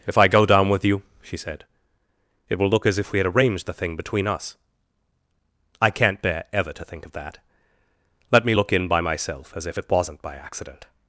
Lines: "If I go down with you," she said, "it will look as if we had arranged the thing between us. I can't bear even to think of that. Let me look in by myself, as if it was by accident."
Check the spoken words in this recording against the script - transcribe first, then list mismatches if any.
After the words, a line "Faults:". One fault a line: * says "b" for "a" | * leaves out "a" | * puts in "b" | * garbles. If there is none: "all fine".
"If I go down with you," she said, "it will look as if we had arranged the thing between us. I can't bear ever to think of that. Let me look in by myself, as if it wasn't by accident."
Faults:
* says "ever" for "even"
* says "wasn't" for "was"